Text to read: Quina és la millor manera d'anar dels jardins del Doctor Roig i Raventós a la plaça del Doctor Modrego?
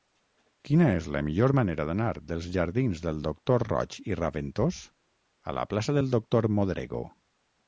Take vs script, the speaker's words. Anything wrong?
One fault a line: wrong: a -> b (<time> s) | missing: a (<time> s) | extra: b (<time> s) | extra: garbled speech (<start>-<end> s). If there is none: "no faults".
no faults